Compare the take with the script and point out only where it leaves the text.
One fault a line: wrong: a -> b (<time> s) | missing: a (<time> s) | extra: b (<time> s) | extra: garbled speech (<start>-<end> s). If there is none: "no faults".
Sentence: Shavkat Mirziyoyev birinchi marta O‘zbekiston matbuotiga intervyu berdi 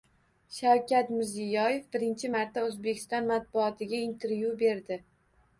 no faults